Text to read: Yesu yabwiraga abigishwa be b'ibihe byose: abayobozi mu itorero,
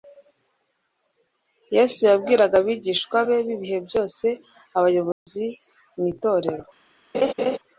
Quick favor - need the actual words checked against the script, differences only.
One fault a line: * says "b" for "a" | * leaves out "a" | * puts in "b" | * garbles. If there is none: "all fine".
all fine